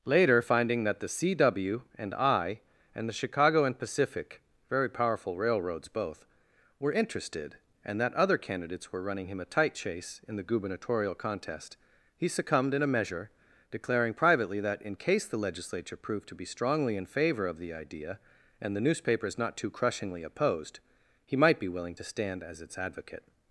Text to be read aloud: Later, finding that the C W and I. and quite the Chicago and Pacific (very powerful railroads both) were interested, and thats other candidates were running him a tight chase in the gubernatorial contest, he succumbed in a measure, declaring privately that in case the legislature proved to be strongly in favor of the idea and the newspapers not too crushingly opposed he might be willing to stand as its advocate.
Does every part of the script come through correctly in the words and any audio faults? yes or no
no